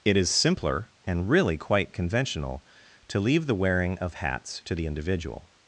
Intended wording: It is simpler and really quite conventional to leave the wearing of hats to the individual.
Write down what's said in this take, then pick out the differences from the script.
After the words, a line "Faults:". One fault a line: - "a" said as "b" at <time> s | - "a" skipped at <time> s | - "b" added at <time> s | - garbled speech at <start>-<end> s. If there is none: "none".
It is simpler and really quite conventional to leave the wearing of hats to the individual.
Faults:
none